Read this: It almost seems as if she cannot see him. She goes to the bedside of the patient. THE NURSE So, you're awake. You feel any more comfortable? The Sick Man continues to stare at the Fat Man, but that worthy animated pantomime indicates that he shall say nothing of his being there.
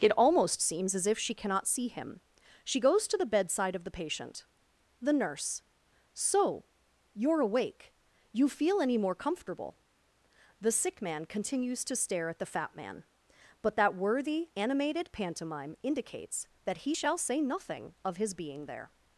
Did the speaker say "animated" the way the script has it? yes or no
yes